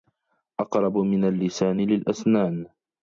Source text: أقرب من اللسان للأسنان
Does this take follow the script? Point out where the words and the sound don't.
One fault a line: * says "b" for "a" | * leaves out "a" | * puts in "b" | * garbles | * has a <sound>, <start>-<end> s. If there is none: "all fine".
all fine